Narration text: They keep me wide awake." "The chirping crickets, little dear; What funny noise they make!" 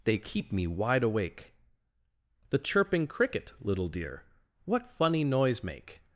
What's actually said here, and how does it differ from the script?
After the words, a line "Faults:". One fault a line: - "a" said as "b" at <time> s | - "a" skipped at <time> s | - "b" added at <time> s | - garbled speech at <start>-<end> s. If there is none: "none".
They keep me wide awake." "The chirping cricket, little dear; What funny noise make!"
Faults:
- "crickets" said as "cricket" at 3.1 s
- "they" skipped at 5.6 s